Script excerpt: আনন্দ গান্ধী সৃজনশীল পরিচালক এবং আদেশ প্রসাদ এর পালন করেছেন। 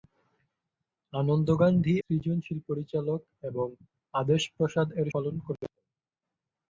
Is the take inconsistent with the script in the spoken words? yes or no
no